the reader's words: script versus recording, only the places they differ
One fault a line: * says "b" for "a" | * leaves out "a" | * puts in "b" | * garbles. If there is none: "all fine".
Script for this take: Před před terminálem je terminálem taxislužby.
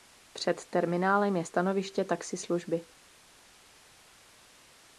* leaves out "před"
* says "stanoviště" for "terminálem"